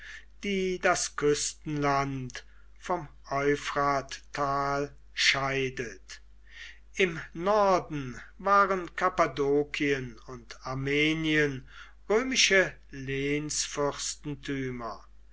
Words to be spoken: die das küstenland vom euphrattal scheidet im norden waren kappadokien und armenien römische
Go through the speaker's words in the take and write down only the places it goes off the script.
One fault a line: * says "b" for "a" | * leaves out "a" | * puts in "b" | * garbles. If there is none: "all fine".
all fine